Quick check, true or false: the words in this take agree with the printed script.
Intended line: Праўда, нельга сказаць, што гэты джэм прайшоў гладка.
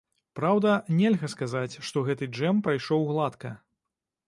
true